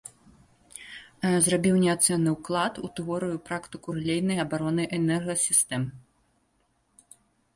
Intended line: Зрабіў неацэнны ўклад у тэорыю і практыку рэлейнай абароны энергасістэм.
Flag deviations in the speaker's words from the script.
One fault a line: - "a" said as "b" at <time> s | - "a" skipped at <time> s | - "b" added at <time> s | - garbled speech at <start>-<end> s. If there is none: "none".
none